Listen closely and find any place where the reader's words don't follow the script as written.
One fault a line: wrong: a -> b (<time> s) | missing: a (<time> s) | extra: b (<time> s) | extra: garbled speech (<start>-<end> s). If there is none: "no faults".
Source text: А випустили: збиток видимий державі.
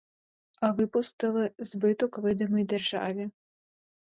no faults